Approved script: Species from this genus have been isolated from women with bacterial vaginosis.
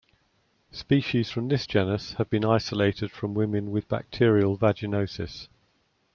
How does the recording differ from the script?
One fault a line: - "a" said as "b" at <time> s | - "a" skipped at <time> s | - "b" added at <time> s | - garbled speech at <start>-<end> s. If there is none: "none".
none